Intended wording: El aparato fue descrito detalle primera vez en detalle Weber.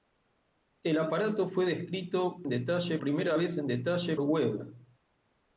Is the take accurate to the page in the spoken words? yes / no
yes